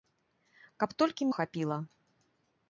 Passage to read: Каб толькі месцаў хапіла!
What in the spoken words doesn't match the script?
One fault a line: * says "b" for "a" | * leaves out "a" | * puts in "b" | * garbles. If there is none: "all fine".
* leaves out "месцаў"